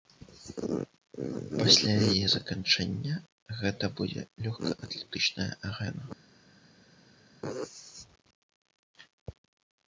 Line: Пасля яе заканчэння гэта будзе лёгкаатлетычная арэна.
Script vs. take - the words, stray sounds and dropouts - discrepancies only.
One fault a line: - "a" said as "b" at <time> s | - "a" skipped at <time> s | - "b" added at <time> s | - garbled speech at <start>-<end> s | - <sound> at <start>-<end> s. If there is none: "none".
none